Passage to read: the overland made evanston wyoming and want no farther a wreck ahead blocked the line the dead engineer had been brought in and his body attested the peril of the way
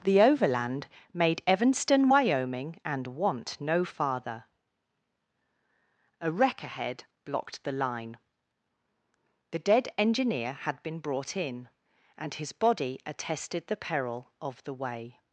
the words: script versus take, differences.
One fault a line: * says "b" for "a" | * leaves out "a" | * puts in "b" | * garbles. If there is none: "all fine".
all fine